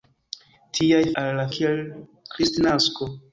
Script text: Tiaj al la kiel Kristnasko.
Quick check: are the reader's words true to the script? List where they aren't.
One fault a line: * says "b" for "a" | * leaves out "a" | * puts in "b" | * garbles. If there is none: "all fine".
all fine